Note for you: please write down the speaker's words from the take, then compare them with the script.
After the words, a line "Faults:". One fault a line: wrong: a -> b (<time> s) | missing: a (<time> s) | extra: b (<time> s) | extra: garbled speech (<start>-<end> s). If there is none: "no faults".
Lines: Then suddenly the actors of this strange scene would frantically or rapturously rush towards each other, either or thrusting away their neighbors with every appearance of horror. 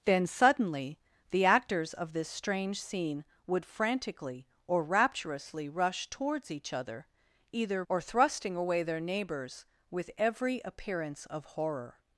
Then suddenly the actors of this strange scene would frantically or rapturously rush towards each other, either or thrusting away their neighbors with every appearance of horror.
Faults:
no faults